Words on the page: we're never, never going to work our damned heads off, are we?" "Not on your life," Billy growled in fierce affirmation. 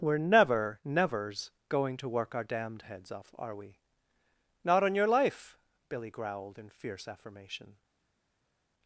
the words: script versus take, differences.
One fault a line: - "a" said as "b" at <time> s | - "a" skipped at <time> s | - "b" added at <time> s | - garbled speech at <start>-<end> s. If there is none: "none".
- "never" said as "nevers" at 0.8 s